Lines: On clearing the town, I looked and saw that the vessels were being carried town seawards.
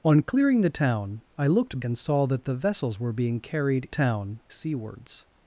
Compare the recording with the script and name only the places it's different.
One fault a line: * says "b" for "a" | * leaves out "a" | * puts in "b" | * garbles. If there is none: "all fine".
all fine